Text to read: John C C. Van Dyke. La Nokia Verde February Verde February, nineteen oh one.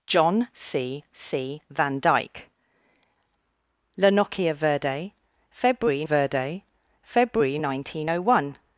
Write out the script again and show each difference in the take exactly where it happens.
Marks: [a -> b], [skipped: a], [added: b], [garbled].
John C C. Van Dyke. La Nokia Verde February Verde February, nineteen oh one.